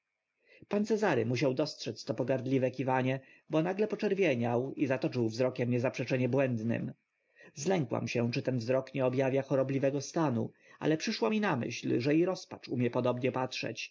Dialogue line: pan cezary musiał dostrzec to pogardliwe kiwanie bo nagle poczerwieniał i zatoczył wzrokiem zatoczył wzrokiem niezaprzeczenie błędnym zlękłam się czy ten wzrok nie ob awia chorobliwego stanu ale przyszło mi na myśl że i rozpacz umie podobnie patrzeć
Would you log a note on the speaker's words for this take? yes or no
yes